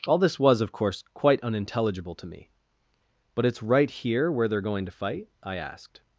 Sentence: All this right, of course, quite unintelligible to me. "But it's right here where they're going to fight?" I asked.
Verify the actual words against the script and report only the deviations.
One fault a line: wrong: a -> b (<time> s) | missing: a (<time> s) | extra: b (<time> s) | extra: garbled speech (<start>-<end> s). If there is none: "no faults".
wrong: right -> was (0.4 s)